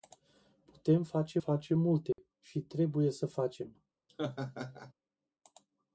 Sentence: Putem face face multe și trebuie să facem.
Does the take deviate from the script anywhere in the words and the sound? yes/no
yes